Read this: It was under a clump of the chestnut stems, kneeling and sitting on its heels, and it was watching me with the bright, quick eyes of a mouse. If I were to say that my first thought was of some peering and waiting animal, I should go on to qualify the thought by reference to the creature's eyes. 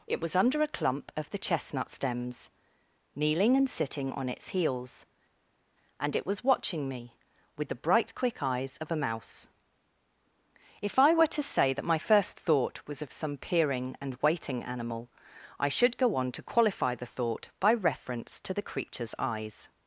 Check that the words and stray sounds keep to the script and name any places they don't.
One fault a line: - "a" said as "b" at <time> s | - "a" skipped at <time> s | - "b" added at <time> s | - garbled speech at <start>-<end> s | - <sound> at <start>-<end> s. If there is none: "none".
none